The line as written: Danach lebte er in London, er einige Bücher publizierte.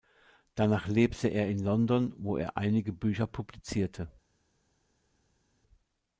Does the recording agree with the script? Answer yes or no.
no